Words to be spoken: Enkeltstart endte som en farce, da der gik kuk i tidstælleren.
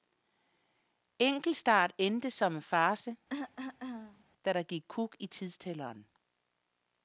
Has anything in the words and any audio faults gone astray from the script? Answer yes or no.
yes